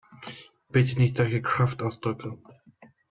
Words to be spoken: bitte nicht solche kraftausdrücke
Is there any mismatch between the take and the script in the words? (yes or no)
no